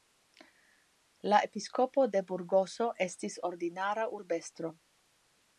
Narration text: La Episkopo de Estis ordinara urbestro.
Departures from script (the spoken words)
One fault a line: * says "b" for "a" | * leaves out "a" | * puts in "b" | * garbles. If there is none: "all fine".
* puts in "Burgoso"